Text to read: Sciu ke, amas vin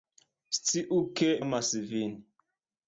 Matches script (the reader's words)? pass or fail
pass